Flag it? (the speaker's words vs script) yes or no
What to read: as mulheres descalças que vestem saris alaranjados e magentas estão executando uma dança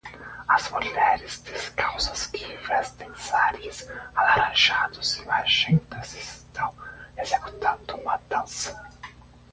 no